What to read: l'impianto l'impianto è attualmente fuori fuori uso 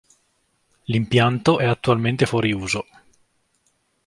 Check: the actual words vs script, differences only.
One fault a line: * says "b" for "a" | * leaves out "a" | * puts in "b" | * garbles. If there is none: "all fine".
* leaves out "l'impianto"
* leaves out "fuori"